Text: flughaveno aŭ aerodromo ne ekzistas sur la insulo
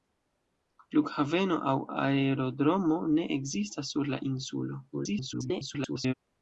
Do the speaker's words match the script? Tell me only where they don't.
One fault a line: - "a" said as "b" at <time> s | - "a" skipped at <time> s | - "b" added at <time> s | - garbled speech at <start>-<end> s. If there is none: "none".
- garbled speech at 4.9-6.1 s